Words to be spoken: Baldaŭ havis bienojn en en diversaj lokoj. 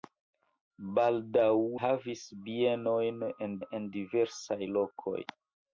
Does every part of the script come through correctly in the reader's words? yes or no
yes